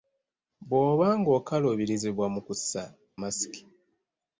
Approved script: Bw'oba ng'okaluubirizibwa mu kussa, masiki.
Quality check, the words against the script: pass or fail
pass